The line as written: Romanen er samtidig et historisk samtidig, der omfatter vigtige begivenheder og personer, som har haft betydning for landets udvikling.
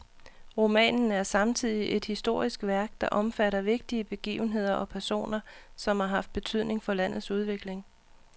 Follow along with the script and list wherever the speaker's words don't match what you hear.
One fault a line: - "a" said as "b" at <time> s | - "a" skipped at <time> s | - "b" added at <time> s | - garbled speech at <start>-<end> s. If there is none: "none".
- "samtidig" said as "værk" at 2.6 s